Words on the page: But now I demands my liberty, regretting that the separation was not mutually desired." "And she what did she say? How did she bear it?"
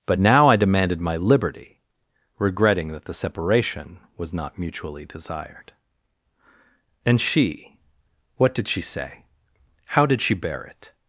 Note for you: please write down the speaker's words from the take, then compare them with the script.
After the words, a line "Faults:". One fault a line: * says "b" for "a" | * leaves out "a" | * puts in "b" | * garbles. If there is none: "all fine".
But now I demanded my liberty, regretting that the separation was not mutually desired." "And she what did she say? How did she bear it?"
Faults:
* says "demanded" for "demands"